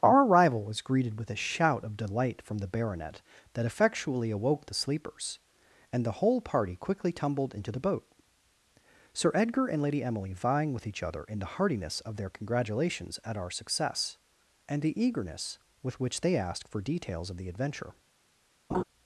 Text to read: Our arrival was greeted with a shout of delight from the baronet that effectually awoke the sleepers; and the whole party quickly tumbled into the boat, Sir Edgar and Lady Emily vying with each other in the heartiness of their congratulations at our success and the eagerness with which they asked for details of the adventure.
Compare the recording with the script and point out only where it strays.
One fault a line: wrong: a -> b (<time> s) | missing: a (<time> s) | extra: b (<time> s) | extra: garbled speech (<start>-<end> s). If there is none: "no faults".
no faults